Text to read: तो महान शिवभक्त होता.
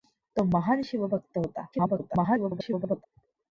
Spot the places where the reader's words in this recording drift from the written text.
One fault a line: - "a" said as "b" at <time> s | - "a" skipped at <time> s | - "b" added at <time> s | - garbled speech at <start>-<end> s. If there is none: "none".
- garbled speech at 1.7-3.1 s